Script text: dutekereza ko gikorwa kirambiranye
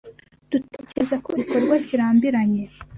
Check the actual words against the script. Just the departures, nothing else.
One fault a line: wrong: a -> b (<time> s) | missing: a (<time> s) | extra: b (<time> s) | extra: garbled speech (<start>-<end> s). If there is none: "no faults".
no faults